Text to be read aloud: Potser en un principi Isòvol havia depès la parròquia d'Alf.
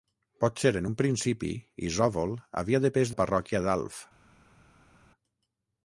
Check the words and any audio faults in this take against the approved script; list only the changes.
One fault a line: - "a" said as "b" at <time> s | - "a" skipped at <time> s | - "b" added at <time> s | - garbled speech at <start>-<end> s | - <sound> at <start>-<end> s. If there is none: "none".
none